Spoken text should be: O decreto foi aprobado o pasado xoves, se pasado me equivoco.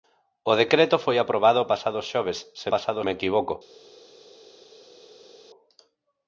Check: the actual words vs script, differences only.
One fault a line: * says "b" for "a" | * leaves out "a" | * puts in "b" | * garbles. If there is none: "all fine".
all fine